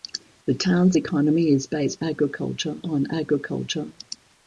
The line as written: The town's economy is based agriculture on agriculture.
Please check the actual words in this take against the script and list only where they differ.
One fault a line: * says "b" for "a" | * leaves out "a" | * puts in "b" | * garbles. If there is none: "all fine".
all fine